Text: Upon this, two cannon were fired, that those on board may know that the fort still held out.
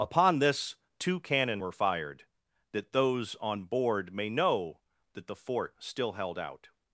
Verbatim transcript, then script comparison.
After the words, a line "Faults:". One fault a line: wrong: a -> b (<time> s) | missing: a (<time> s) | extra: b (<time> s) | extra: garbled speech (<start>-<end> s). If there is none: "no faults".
Upon this, two cannon were fired, that those on board may know that the fort still held out.
Faults:
no faults